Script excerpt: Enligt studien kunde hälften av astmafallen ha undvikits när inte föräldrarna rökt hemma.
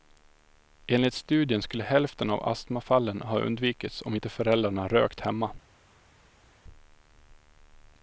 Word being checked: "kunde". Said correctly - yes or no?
no